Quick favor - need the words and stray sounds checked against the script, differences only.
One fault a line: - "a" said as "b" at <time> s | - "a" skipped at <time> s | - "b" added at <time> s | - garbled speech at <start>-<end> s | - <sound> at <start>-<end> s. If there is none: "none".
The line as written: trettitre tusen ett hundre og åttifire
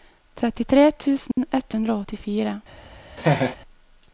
- dropout at 1.3-1.4 s
- laugh at 3.2-3.6 s